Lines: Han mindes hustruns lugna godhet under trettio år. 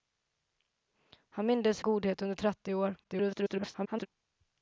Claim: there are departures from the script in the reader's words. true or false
true